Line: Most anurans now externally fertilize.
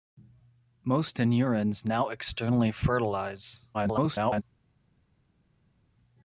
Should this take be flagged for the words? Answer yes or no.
yes